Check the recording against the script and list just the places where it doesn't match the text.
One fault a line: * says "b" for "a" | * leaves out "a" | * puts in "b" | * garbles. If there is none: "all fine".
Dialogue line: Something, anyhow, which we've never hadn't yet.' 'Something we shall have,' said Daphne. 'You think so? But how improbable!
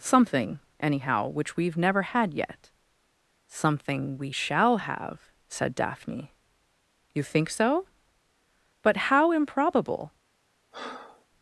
* says "had" for "hadn't"